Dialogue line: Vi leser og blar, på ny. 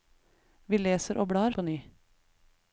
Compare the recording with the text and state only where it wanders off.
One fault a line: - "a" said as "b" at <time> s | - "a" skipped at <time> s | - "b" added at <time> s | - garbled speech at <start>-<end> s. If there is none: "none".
none